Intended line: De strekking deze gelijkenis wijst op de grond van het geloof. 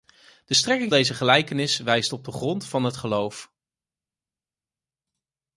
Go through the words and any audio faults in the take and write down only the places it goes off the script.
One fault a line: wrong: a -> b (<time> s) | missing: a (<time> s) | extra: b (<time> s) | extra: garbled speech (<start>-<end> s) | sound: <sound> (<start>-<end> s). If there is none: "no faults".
no faults